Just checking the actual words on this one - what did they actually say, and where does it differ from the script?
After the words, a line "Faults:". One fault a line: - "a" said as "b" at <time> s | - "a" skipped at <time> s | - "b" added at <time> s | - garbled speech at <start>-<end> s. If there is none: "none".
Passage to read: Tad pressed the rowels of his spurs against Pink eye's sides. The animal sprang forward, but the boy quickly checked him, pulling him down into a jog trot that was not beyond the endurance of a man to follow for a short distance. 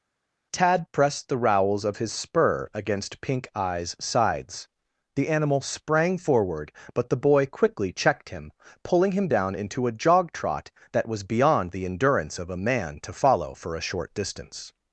Tad pressed the rowels of his spur against Pink eye's sides. The animal sprang forward, but the boy quickly checked him, pulling him down into a jog trot that was beyond the endurance of a man to follow for a short distance.
Faults:
- "spurs" said as "spur" at 2.1 s
- "not" skipped at 11.2 s